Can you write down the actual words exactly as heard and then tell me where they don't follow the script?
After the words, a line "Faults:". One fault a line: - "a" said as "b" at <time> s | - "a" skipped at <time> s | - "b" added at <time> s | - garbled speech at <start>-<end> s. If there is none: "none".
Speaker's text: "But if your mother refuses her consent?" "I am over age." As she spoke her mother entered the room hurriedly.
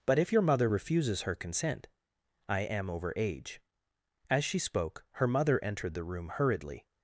"But if your mother refuses her consent?" "I am over age." As she spoke her mother entered the room hurriedly.
Faults:
none